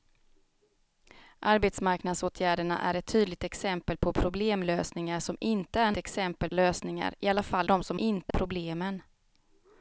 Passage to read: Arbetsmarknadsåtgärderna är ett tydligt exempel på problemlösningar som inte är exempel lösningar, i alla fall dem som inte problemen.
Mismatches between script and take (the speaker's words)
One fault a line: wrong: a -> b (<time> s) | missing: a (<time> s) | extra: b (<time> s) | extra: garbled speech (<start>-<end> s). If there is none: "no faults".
no faults